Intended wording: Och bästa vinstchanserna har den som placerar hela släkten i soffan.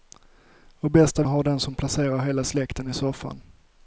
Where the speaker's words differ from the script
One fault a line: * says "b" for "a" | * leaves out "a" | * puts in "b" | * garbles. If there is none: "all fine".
* leaves out "vinstchanserna"